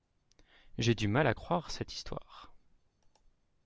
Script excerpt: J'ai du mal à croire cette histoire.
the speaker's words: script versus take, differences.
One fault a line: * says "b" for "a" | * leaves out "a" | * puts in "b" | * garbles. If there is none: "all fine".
all fine